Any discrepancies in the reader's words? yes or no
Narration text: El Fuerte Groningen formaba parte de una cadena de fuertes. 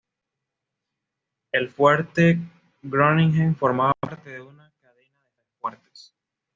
yes